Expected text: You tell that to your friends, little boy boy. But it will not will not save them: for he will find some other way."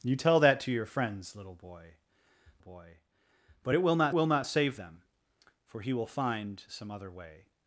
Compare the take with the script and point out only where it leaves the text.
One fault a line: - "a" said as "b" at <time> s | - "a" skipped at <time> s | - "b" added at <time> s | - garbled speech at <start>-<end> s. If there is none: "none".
none